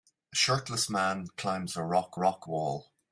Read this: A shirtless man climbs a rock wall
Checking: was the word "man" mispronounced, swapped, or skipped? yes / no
no